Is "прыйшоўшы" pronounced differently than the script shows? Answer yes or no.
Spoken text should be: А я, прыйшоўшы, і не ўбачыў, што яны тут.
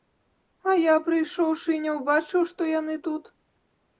no